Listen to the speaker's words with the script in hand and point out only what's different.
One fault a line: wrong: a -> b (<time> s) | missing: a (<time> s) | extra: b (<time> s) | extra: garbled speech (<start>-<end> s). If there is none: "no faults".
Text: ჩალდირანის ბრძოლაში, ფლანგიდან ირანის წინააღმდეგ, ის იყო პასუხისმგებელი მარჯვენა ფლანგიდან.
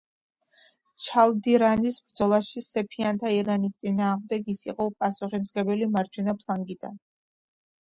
wrong: ფლანგიდან -> სეფიანთა (2.7 s)